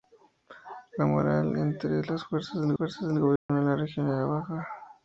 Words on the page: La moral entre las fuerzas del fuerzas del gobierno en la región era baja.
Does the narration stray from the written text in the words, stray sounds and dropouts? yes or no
yes